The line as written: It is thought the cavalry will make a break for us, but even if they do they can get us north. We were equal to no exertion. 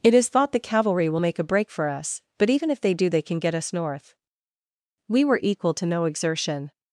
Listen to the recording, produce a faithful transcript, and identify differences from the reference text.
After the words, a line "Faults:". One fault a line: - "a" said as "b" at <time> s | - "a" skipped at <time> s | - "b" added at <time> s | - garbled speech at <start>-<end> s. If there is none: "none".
It is thought the cavalry will make a break for us, but even if they do they can get us north. We were equal to no exertion.
Faults:
none